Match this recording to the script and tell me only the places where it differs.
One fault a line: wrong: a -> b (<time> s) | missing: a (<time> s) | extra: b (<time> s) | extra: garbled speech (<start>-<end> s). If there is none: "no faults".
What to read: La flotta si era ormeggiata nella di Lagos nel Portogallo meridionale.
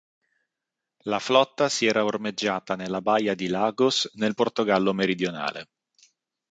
extra: baia (3.0 s)